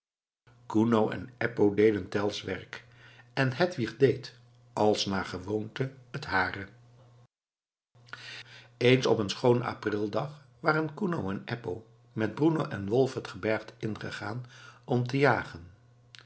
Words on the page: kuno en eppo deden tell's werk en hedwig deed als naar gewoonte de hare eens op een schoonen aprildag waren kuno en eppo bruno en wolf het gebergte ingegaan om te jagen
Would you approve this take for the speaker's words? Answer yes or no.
no